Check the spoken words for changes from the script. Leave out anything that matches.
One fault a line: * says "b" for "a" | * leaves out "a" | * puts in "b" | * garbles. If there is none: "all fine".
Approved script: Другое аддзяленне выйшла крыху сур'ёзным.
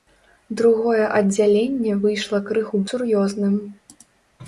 all fine